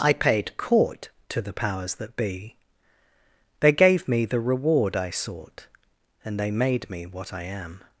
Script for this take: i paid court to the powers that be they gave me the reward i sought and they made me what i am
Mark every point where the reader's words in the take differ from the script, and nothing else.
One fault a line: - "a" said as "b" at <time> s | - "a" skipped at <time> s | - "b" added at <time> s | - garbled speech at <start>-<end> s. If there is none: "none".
none